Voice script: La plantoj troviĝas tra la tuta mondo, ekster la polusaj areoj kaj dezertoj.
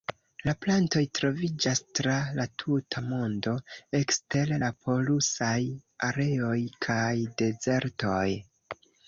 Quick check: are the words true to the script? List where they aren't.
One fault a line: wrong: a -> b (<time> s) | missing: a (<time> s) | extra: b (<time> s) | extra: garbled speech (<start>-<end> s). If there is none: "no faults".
no faults